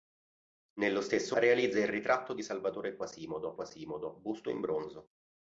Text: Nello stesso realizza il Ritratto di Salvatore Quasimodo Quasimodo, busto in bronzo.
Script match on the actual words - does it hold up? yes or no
yes